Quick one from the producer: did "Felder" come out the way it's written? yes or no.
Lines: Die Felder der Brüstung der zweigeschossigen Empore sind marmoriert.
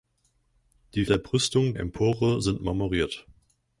no